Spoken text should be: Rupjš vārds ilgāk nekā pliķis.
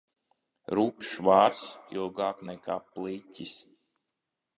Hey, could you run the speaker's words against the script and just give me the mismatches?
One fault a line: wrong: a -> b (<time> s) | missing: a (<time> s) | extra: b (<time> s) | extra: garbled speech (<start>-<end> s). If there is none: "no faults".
no faults